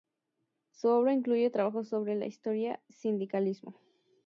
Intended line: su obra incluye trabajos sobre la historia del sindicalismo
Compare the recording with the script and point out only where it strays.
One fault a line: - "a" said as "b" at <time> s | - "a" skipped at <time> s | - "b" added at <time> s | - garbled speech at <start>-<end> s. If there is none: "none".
- "del" skipped at 2.8 s